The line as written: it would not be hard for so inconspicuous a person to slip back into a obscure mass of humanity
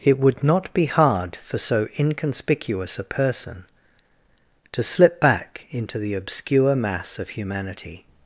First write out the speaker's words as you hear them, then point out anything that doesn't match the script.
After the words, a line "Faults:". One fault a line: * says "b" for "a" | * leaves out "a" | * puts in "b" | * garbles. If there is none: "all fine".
it would not be hard for so inconspicuous a person to slip back into the obscure mass of humanity
Faults:
* says "the" for "a"